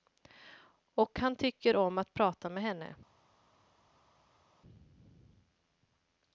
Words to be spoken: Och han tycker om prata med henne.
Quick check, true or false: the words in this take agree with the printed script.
false